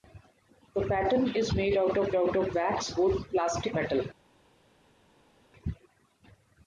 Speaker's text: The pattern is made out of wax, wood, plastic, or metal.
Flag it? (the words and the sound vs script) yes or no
yes